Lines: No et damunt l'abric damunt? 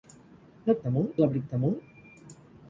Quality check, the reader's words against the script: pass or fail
pass